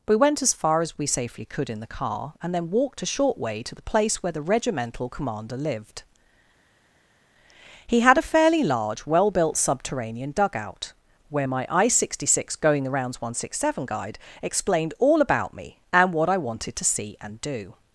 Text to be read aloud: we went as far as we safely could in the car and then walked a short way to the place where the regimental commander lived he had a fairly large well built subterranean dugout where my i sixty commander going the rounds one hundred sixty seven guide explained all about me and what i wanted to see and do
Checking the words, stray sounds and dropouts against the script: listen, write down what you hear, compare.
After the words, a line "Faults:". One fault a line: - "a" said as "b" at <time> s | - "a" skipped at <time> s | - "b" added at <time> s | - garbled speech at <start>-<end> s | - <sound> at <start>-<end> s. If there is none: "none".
we went as far as we safely could in the car and then walked a short way to the place where the regimental commander lived he had a fairly large well built subterranean dugout where my i sixty six going the rounds one hundred sixty seven guide explained all about me and what i wanted to see and do
Faults:
- "commander" said as "six" at 12.3 s